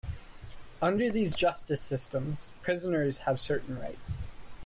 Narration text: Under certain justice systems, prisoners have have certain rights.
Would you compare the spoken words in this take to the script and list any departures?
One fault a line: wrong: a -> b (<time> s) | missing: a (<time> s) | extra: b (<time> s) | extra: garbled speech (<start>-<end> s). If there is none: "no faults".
wrong: certain -> these (1.1 s)
missing: have (3.4 s)